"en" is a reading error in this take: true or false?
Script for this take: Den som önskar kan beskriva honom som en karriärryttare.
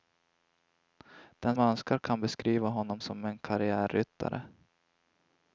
false